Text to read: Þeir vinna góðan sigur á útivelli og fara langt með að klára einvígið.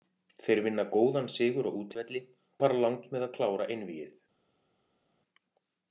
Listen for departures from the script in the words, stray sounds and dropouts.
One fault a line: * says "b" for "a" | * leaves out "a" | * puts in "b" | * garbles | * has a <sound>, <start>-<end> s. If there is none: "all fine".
* leaves out "og"